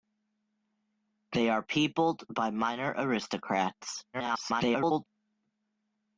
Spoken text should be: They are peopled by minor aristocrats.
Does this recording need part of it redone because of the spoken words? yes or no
yes